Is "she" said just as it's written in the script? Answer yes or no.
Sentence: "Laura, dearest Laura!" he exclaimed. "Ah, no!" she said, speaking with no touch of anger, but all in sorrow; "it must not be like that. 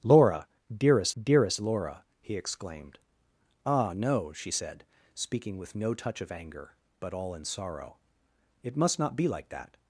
yes